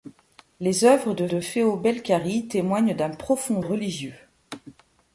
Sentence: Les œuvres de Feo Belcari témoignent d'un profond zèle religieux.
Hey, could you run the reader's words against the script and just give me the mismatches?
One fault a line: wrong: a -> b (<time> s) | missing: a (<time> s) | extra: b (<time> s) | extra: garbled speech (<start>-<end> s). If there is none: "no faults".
extra: de (1.3 s)
missing: zèle (3.6 s)